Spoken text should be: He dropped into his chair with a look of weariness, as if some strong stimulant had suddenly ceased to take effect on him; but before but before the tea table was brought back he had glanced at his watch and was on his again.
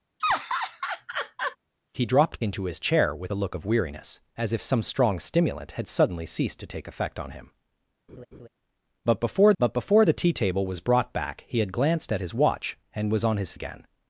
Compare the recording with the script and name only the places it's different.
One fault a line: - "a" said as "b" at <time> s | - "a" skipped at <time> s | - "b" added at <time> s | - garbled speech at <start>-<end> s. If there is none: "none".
none